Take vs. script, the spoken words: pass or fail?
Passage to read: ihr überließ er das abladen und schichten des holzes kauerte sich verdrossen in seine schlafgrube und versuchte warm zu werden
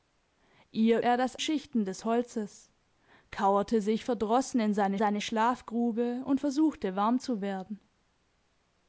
fail